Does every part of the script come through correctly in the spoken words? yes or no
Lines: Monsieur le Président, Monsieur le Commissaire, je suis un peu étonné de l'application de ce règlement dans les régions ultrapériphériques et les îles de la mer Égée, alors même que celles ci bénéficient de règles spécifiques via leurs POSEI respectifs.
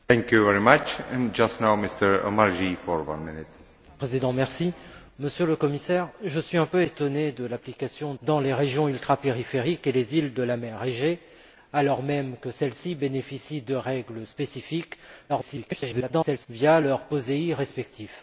no